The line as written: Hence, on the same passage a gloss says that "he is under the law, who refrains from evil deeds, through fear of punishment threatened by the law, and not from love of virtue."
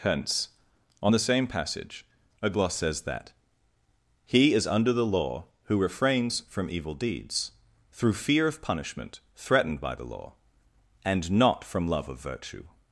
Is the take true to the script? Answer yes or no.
yes